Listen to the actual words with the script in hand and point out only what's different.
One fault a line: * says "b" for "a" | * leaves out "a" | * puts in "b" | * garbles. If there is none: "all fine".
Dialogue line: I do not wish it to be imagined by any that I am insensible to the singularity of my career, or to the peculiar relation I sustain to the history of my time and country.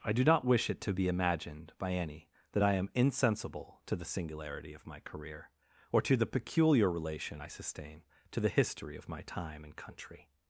all fine